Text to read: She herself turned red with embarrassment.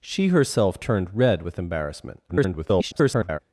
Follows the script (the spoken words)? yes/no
no